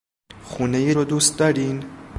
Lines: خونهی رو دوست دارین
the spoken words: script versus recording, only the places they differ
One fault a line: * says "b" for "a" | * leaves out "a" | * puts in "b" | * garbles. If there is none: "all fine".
all fine